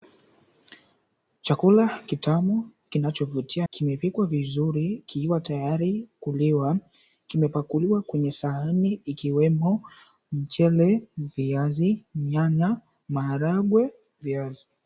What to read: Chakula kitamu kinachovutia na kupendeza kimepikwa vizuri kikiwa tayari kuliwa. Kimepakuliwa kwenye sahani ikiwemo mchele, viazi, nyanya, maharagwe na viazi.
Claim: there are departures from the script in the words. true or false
true